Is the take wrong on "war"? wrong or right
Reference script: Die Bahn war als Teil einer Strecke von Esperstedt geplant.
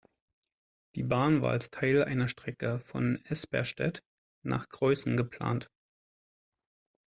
right